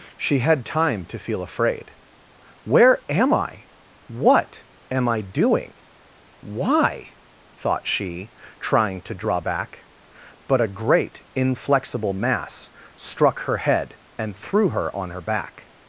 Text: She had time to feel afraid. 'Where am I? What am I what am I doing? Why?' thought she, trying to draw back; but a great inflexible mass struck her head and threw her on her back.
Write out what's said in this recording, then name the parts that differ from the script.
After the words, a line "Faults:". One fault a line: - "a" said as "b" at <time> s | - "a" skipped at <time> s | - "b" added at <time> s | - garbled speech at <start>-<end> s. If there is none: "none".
She had time to feel afraid. 'Where am I? What am I doing? Why?' thought she, trying to draw back; but a great inflexible mass struck her head and threw her on her back.
Faults:
- "what am I" skipped at 5.2 s